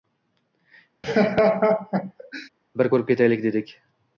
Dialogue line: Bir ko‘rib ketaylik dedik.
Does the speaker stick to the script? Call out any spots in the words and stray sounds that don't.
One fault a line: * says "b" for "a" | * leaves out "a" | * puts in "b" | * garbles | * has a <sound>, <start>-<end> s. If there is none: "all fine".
* has a laugh, 1.0-2.5 s